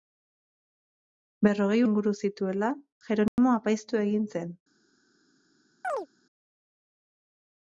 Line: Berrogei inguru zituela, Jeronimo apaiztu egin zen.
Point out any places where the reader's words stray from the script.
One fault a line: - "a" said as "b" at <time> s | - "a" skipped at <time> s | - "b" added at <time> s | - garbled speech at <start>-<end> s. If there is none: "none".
none